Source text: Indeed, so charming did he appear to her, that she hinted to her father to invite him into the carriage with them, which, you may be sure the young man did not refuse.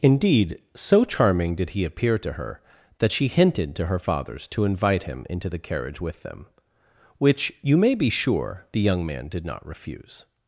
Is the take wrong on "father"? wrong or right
wrong